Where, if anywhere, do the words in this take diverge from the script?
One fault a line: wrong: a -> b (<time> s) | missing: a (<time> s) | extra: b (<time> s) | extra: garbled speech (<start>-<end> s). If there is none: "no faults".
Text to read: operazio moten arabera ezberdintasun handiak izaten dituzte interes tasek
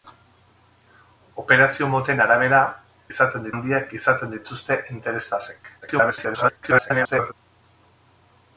wrong: ezberdintasun -> izaten (3.1 s)
extra: garbled speech (5.8-7.3 s)